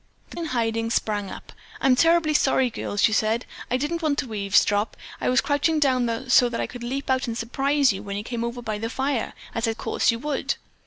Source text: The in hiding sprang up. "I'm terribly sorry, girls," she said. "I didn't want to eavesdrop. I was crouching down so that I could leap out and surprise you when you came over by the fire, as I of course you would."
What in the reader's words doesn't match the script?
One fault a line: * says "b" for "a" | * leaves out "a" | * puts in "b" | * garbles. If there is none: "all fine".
all fine